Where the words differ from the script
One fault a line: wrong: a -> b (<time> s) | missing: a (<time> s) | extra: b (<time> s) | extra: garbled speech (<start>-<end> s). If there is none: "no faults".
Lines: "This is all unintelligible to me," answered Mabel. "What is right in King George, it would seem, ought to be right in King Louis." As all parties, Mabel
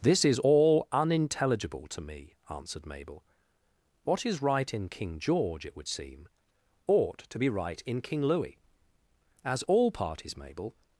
no faults